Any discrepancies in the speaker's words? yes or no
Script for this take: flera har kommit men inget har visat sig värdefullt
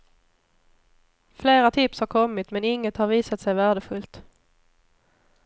yes